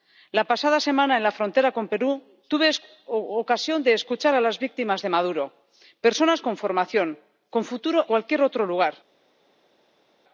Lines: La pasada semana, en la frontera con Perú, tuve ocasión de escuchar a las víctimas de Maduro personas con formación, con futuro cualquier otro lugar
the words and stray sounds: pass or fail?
pass